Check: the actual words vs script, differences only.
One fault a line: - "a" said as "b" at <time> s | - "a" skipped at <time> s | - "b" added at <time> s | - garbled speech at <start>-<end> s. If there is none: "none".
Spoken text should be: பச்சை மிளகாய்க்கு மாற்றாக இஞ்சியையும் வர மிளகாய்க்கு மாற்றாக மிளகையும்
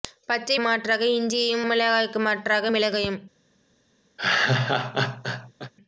- "மிளகாய்க்கு" skipped at 0.6 s
- "வர" skipped at 1.7 s